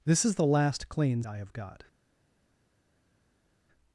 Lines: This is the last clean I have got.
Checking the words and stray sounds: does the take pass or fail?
pass